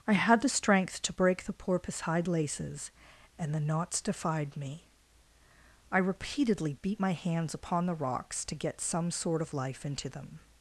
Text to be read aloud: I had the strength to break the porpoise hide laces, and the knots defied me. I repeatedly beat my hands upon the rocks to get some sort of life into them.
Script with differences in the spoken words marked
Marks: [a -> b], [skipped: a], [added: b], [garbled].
I had the strength to break the porpoise hide laces, and the knots defied me. I repeatedly beat my hands upon the rocks to get some sort of life into them.